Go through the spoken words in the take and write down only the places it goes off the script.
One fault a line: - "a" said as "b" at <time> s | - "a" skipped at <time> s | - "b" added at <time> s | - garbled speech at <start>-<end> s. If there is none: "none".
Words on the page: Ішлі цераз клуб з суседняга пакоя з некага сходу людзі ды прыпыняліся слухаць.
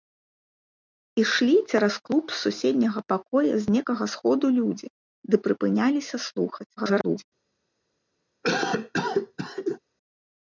- garbled speech at 6.8-7.2 s